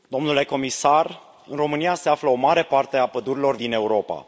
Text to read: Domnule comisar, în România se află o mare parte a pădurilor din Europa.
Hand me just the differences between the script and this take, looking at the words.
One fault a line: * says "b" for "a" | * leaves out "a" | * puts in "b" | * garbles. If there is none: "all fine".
all fine